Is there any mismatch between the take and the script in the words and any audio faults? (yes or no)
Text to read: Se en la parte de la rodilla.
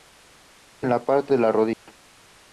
yes